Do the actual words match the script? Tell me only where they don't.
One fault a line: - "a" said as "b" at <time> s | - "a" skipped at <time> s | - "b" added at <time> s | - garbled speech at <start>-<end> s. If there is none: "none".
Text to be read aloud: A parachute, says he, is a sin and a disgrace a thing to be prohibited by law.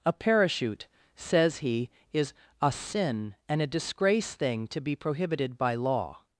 - "a" skipped at 4.3 s